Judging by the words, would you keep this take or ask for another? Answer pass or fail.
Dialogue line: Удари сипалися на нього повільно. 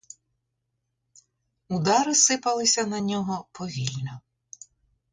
pass